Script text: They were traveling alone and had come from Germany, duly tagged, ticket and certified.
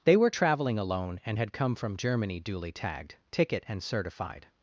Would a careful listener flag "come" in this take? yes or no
no